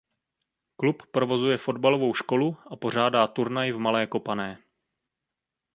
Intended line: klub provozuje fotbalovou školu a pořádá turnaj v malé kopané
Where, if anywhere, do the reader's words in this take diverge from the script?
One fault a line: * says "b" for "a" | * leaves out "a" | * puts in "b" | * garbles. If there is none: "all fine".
all fine